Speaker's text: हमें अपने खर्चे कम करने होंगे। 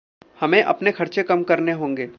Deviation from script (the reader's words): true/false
false